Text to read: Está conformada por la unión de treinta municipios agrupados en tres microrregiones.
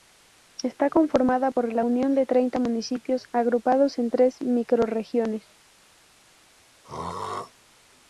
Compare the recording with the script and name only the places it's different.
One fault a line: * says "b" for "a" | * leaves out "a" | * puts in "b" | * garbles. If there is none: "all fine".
all fine